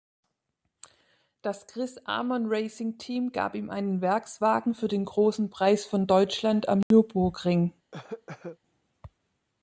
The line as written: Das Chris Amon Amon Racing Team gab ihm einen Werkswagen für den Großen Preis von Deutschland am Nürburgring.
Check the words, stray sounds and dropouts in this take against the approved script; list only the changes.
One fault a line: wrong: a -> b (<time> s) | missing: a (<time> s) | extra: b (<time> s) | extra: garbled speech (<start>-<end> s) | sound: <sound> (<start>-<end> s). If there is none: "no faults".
missing: Amon (2.4 s)
sound: dropout (6.8-6.9 s)
sound: cough (7.9-8.6 s)